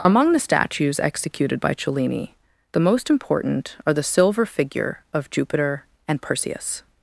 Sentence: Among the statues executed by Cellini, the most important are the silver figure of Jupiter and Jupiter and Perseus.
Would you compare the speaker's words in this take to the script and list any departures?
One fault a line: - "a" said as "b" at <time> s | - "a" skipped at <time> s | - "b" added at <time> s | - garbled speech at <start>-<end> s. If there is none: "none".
- "Jupiter and" skipped at 6.2 s